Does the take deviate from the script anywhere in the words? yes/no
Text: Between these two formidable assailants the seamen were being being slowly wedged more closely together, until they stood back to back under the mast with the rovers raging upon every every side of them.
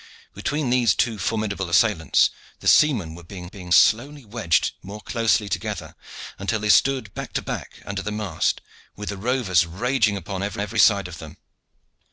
no